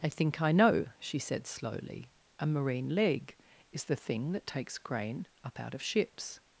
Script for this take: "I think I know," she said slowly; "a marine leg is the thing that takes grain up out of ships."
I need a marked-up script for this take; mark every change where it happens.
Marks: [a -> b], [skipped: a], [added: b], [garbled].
"I think I know," she said slowly; "a marine leg is the thing that takes grain up out of ships."